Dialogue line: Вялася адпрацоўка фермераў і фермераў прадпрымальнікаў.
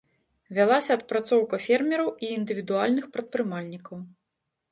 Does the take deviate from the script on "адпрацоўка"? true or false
false